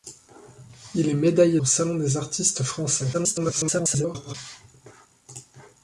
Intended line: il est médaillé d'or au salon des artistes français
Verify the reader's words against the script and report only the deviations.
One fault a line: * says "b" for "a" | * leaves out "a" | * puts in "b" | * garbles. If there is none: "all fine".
* leaves out "d'or"
* garbles